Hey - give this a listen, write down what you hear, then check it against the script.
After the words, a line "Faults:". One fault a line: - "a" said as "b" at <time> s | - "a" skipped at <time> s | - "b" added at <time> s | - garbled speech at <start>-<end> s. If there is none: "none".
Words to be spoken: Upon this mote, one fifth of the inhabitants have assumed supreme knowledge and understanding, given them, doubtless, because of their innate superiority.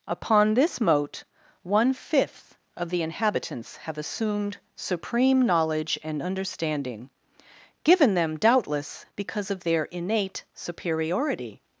Upon this mote, one fifth of the inhabitants have assumed supreme knowledge and understanding, given them, doubtless, because of their innate superiority.
Faults:
none